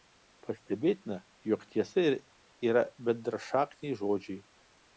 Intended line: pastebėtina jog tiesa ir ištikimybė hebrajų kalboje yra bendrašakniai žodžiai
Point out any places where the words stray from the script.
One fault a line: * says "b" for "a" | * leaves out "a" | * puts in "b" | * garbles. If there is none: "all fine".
* leaves out "ištikimybė hebrajų kalboje"